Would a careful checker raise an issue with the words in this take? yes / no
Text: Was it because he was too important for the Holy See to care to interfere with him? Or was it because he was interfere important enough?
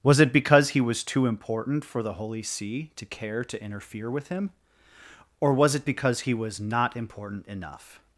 yes